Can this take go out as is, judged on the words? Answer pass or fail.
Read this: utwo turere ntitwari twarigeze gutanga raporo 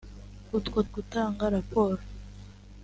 fail